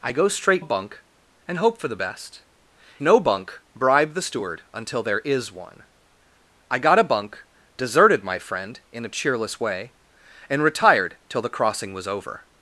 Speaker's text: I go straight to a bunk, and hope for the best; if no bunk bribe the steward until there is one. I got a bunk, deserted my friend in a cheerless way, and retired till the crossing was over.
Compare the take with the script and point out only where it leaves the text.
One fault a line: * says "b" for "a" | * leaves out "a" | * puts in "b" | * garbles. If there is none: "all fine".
* leaves out "to"
* leaves out "if"